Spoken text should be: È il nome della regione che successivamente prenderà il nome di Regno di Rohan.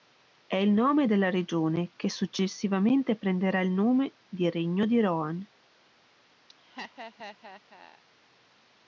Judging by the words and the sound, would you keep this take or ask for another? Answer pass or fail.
fail